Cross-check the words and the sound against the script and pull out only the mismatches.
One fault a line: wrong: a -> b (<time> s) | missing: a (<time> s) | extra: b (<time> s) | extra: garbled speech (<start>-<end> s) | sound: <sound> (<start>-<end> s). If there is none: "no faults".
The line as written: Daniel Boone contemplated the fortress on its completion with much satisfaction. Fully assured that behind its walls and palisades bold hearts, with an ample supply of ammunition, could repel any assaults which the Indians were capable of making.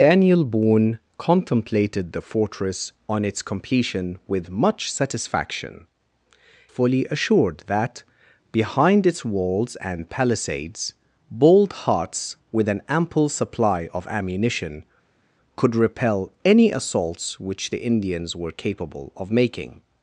no faults